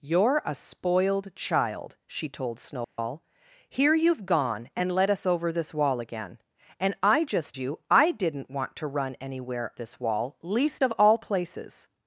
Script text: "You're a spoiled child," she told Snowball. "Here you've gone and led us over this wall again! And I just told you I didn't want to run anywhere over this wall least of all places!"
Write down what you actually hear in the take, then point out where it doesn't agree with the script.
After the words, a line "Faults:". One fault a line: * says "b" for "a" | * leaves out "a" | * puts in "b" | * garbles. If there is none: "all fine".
"You're a spoiled child," she told Snowball. "Here you've gone and led us over this wall again! And I just you I didn't want to run anywhere this wall least of all places!"
Faults:
* leaves out "told"
* leaves out "over"